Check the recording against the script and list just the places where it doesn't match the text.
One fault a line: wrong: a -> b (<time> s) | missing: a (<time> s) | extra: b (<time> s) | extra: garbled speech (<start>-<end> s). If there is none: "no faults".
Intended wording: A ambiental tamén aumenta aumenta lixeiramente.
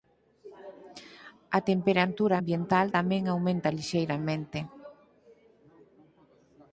extra: temperatura (1.7 s)
missing: aumenta (3.7 s)